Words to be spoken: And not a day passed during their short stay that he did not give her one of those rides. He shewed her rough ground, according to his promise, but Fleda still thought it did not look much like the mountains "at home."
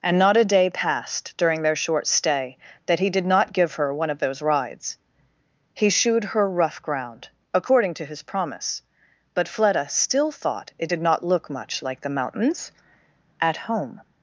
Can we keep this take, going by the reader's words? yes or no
yes